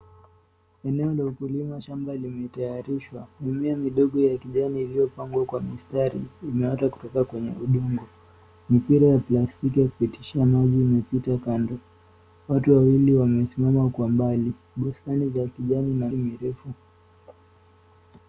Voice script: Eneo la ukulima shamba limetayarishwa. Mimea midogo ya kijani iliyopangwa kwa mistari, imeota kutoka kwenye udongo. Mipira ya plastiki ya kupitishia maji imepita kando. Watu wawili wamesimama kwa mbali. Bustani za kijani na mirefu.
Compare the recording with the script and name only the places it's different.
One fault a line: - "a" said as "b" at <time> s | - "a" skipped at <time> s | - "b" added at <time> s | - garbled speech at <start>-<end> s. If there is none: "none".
none